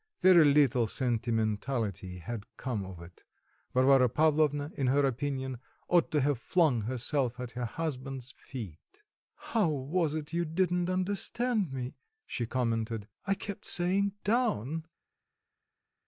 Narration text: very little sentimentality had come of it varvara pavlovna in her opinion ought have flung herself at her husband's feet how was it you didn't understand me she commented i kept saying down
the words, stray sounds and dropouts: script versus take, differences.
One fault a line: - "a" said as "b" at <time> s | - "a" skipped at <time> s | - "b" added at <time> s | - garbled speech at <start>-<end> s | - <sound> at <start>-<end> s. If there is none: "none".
- "to" added at 6.1 s